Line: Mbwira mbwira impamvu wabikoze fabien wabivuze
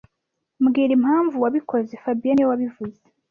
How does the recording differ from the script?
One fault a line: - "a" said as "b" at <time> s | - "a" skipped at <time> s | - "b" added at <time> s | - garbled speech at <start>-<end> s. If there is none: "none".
- "mbwira" skipped at 0.9 s
- "niwe" added at 2.3 s